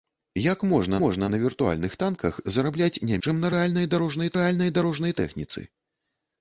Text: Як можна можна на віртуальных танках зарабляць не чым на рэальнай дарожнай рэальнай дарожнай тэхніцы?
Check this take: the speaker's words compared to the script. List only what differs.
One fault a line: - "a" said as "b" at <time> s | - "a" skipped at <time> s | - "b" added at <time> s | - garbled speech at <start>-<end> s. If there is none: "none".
none